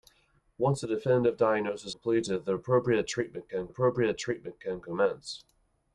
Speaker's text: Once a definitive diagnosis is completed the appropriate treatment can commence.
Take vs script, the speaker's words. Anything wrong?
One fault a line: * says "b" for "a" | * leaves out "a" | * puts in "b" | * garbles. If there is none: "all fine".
* leaves out "is"
* puts in "appropriate treatment can"